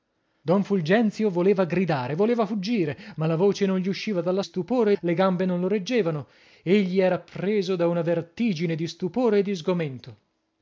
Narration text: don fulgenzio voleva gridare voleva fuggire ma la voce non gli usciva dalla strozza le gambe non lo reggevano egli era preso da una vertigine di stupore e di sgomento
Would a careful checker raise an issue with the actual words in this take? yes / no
yes